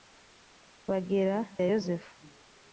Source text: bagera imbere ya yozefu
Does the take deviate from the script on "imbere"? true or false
true